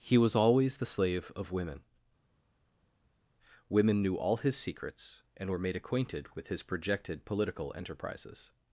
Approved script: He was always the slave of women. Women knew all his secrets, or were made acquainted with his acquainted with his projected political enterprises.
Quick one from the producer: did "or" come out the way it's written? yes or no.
no